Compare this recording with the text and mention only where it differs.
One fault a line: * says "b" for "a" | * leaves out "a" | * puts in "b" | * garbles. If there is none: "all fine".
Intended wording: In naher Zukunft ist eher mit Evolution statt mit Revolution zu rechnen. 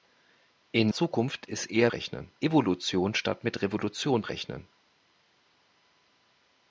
* leaves out "naher"
* says "rechnen" for "mit"
* leaves out "zu"